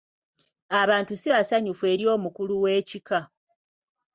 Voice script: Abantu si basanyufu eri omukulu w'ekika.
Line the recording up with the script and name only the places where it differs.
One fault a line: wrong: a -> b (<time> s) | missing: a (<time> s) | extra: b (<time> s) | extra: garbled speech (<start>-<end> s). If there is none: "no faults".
no faults